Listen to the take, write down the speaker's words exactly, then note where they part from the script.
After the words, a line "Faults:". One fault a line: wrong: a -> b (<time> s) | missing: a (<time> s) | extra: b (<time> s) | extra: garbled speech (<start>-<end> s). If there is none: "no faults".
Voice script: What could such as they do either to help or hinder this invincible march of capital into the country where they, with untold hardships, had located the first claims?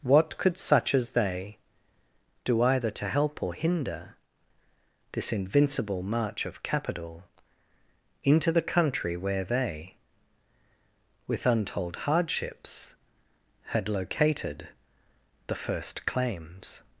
What could such as they do either to help or hinder this invincible march of capital into the country where they, with untold hardships, had located the first claims?
Faults:
no faults